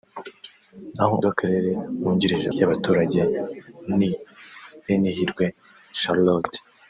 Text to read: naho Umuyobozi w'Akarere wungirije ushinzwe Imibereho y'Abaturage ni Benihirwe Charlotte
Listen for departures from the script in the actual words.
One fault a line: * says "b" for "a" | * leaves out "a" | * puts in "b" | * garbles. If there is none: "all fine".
* leaves out "Umuyobozi"
* leaves out "ushinzwe Imibereho"